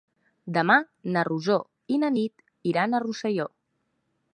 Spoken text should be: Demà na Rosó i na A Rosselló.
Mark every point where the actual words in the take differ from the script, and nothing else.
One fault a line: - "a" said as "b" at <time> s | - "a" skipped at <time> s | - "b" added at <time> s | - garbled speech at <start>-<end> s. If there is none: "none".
- "Nit iran" added at 2.2 s